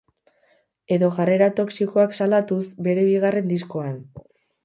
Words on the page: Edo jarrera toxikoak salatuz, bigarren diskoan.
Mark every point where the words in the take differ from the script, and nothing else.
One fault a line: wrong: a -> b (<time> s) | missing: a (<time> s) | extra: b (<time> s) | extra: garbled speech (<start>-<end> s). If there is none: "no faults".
extra: bere (2.9 s)